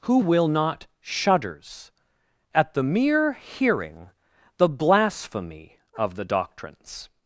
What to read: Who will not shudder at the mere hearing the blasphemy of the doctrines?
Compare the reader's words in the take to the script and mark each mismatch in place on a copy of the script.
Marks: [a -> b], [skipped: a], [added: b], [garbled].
Who will not [shudder -> shudders] at the mere hearing the blasphemy of the doctrines?